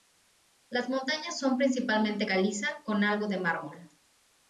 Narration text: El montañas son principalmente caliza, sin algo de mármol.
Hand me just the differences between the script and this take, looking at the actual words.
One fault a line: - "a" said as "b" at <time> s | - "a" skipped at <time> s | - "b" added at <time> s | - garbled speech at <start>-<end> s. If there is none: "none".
- "El" said as "Las" at 0.7 s
- "sin" said as "con" at 2.8 s